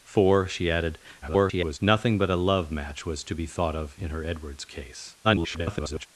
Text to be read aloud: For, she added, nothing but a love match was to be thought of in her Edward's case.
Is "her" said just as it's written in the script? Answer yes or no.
yes